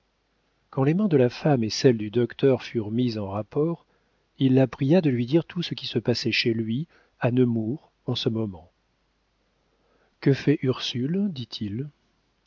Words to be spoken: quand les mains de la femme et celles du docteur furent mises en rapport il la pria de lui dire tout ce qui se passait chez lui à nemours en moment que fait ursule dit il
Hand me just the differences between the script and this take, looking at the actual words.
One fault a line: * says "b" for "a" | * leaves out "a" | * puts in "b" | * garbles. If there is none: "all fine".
* puts in "ce"